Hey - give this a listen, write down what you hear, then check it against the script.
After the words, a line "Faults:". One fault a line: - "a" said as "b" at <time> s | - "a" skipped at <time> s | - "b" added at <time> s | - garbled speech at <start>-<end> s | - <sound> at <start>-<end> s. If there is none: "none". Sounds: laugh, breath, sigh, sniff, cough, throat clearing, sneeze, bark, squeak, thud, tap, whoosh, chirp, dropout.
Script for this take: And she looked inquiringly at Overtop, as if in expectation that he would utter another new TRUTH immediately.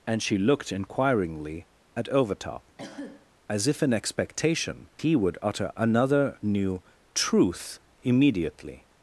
And she looked inquiringly at Overtop, as if in expectation he would utter another new TRUTH immediately.
Faults:
- cough at 2.8-3.3 s
- "that" skipped at 4.9 s